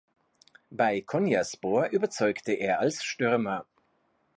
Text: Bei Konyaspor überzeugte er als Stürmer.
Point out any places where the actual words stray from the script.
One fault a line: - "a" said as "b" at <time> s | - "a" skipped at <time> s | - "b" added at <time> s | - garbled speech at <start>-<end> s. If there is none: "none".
none